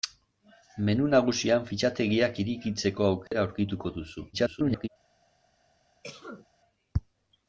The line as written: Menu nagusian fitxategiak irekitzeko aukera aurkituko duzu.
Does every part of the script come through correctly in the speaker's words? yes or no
no